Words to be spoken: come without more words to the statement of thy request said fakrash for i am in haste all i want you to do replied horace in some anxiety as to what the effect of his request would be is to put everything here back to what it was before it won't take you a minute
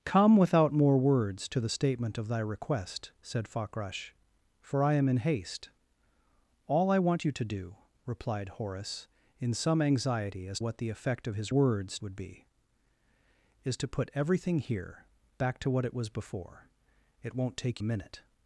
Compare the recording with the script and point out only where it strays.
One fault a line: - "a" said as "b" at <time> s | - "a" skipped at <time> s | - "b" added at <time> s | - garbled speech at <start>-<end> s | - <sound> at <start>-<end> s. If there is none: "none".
- "to" skipped at 10.6 s
- "request" said as "words" at 11.5 s
- "you" skipped at 17.8 s